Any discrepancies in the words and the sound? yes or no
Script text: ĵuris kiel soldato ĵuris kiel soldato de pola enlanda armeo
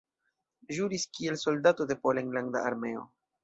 yes